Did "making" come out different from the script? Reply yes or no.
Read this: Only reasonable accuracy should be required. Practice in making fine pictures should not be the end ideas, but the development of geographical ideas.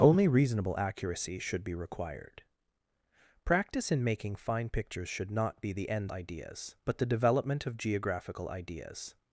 no